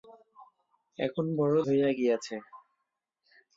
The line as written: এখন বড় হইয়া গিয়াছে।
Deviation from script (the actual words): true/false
false